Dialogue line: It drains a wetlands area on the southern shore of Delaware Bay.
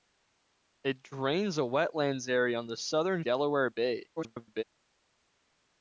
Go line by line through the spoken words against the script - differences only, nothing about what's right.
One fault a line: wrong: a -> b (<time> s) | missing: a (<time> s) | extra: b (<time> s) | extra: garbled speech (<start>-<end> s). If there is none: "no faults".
missing: shore of (3.2 s)
extra: garbled speech (4.2-4.6 s)